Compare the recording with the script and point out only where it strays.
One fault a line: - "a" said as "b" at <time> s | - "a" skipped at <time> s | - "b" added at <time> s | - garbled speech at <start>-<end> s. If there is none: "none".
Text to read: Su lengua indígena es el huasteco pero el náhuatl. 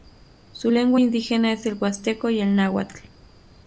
- "pero" said as "y" at 2.3 s